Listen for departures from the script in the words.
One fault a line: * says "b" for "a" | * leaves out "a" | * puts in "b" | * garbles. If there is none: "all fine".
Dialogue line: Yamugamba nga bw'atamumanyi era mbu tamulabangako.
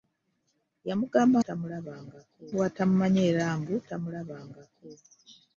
* says "tamulabangako" for "nga"